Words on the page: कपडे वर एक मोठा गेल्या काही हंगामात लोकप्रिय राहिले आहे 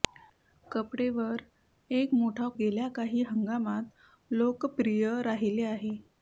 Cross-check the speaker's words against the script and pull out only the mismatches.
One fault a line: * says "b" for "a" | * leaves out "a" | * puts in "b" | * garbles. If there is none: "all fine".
all fine